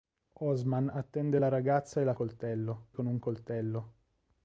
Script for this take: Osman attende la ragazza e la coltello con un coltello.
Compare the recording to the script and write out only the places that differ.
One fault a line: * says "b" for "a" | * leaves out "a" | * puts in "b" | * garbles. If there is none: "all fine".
all fine